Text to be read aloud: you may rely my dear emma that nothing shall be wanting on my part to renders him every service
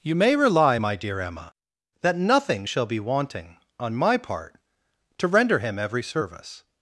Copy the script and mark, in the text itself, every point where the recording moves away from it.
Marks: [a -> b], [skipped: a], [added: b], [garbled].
you may rely my dear emma that nothing shall be wanting on my part to [renders -> render] him every service